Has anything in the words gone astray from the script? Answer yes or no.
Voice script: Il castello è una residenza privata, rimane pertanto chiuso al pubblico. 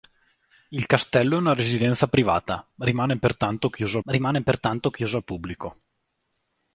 yes